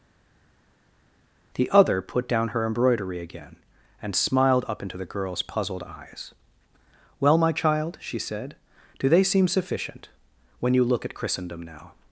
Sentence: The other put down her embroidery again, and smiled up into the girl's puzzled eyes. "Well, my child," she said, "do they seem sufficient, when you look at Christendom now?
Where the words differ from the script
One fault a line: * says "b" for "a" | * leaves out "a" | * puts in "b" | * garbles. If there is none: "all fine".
all fine